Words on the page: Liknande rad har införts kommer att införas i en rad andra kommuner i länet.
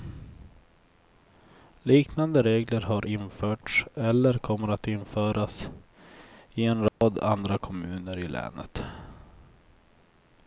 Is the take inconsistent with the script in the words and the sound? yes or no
yes